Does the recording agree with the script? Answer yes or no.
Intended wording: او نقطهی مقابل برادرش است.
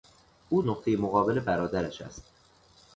yes